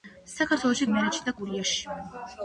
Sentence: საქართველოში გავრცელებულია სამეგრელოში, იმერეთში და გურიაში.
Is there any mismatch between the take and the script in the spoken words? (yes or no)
yes